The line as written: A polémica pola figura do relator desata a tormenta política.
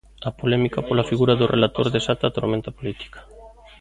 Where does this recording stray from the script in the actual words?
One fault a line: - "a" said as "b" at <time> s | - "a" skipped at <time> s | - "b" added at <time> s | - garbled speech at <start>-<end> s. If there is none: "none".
none